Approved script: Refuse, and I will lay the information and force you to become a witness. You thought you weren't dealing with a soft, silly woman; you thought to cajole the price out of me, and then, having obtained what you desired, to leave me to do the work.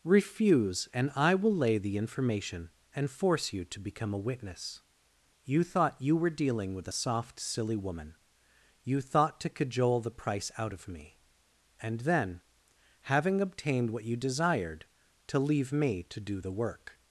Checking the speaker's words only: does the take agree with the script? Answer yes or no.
no